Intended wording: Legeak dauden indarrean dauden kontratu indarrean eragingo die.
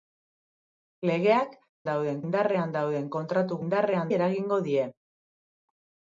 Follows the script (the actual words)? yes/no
yes